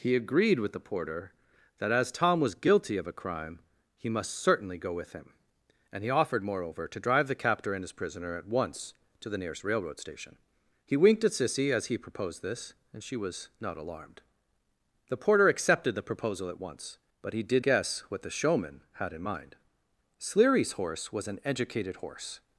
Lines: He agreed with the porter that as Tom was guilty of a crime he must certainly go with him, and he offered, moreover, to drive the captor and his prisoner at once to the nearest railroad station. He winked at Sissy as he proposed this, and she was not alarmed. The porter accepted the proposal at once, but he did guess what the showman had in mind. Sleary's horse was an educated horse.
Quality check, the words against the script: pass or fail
pass